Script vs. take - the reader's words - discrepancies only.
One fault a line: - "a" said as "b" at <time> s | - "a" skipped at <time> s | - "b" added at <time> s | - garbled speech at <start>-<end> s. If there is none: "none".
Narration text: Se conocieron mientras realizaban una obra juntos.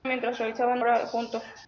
- "conocieron" skipped at 0.1 s
- "una" skipped at 0.8 s